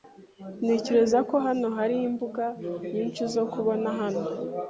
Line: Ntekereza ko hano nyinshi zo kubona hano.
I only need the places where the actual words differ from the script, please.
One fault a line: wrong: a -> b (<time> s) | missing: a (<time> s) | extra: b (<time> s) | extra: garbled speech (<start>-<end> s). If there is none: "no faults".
extra: hari imbuga (1.8 s)